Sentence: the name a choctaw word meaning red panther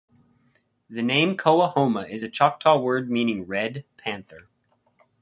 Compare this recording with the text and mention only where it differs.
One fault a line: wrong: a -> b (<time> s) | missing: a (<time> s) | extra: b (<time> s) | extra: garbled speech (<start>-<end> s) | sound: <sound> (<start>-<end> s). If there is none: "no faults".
extra: coahoma is (1.4 s)